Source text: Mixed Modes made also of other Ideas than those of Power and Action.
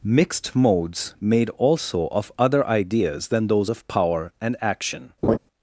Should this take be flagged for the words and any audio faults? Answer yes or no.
yes